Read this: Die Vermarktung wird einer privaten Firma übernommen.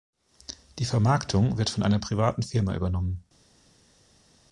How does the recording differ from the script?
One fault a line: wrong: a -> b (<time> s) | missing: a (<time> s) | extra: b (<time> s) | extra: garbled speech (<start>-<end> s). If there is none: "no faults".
extra: von (1.7 s)